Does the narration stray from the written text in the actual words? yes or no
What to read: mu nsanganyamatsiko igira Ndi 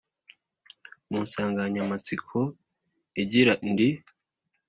no